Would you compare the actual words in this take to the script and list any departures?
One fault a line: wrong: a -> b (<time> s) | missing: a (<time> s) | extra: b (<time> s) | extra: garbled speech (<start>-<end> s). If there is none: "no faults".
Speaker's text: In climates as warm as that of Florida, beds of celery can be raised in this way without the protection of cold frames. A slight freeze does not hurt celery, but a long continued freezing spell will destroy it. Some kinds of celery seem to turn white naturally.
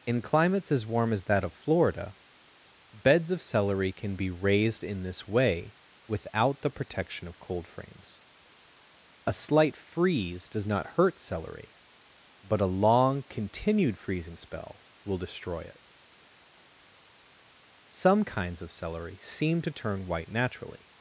no faults